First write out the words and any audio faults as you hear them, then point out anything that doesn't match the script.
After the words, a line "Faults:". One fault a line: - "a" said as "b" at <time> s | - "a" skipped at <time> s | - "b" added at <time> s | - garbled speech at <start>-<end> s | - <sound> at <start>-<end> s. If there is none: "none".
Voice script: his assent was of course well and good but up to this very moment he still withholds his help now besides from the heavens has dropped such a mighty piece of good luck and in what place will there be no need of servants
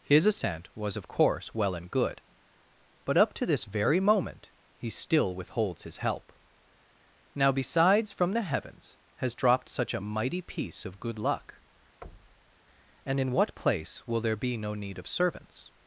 his assent was of course well and good but up to this very moment he still withholds his help now besides from the heavens has dropped such a mighty piece of good luck and in what place will there be no need of servants
Faults:
- thud at 12.0-12.6 s